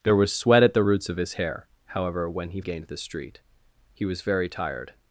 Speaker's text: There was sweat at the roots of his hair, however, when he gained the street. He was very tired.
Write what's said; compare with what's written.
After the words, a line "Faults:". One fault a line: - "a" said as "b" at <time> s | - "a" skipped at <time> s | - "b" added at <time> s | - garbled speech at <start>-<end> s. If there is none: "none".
There was sweat at the roots of his hair, however, when he gained the street. He was very tired.
Faults:
none